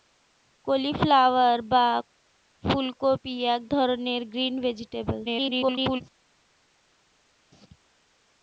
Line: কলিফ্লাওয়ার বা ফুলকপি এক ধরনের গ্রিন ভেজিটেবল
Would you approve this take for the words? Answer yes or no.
no